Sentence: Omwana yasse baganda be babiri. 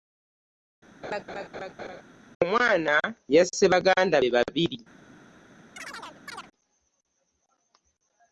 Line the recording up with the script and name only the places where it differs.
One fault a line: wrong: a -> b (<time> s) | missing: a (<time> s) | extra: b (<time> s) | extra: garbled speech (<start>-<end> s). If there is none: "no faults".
no faults